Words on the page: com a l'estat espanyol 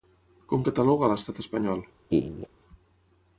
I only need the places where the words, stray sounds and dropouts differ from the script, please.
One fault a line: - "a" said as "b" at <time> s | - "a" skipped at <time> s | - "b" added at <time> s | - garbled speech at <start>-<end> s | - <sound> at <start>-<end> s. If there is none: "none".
- "cataloga" added at 0.7 s
- laugh at 2.1-2.5 s